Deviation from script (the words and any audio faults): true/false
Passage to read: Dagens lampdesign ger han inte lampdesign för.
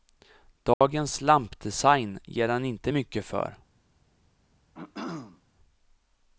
true